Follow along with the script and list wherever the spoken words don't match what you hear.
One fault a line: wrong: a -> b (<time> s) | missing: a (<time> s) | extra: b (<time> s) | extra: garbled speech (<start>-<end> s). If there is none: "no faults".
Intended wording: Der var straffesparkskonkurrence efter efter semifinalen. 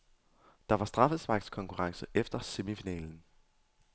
missing: efter (2.4 s)